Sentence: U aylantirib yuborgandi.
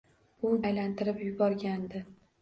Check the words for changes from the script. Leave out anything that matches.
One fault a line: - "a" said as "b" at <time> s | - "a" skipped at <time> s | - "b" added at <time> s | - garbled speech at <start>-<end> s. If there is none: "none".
none